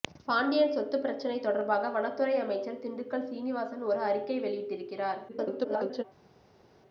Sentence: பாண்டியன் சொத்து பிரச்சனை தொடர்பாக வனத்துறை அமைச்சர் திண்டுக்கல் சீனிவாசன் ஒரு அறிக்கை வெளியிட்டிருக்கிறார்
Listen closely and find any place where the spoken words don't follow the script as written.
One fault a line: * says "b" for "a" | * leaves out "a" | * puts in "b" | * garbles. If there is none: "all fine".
* garbles